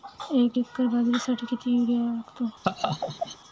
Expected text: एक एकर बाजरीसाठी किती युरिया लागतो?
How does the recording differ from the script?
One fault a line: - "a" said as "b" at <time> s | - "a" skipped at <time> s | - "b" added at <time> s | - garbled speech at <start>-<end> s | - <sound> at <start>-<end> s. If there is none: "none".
- laugh at 2.6-3.4 s